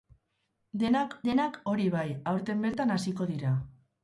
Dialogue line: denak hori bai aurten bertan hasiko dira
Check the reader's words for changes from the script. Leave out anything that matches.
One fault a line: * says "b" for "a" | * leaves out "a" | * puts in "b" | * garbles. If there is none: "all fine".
* puts in "denak"